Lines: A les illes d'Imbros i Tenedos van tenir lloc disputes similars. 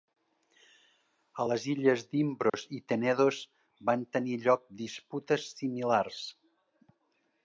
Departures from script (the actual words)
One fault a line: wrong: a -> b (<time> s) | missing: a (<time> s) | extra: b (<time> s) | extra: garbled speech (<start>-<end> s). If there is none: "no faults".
no faults